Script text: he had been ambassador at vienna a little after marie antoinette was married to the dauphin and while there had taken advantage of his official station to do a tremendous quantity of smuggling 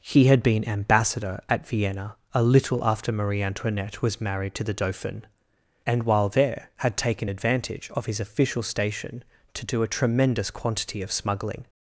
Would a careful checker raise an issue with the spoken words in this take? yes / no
no